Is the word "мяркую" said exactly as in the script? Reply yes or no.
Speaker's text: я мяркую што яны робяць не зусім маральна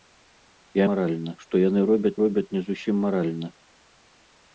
no